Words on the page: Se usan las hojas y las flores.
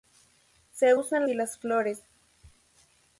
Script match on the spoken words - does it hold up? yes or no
no